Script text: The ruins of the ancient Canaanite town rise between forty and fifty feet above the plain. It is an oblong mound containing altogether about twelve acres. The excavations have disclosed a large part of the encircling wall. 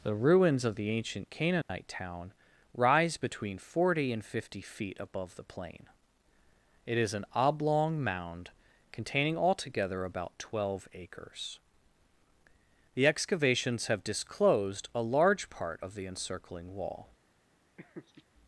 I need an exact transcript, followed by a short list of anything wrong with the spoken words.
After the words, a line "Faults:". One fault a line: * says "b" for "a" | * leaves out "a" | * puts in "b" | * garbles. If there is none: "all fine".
The ruins of the ancient Canaanite town rise between forty and fifty feet above the plain. It is an oblong mound containing altogether about twelve acres. The excavations have disclosed a large part of the encircling wall.
Faults:
all fine